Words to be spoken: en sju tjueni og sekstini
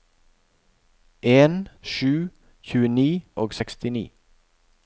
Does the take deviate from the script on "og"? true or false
false